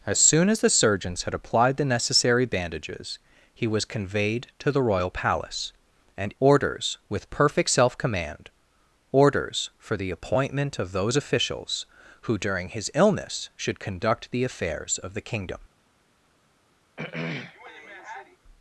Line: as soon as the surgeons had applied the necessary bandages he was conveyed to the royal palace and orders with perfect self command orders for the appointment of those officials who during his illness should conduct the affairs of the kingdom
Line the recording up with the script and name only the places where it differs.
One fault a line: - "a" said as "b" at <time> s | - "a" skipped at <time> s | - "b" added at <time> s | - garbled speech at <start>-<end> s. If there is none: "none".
none